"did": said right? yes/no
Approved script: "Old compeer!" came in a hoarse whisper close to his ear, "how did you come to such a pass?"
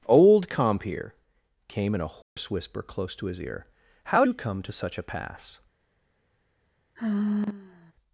no